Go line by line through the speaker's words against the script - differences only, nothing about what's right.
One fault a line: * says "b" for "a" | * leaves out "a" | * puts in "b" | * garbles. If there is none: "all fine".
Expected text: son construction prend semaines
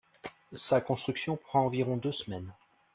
* says "sa" for "son"
* puts in "environ deux"